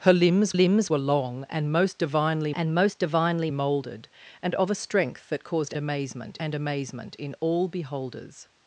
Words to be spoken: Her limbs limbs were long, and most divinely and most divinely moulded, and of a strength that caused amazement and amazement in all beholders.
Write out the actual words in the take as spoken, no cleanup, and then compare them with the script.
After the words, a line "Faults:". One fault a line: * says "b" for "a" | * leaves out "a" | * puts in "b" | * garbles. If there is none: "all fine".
Her limbs limbs were long, and most divinely and most divinely moulded, and of a strength that caused amazement and amazement in all beholders.
Faults:
all fine